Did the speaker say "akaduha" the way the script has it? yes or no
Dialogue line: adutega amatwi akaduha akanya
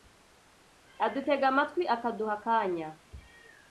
yes